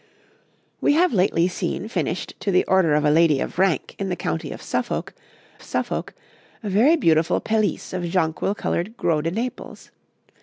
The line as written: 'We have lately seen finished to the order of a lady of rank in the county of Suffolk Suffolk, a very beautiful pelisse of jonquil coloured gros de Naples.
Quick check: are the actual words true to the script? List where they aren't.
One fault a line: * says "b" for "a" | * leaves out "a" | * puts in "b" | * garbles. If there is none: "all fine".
all fine